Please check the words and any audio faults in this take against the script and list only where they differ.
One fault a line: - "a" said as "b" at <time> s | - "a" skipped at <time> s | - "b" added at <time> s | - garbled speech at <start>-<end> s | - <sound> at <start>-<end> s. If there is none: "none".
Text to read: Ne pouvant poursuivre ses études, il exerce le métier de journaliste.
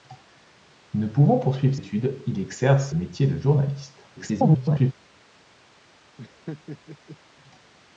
- "ses" skipped at 1.8 s
- "le" skipped at 2.9 s
- garbled speech at 4.2-4.9 s
- laugh at 6.2-7.2 s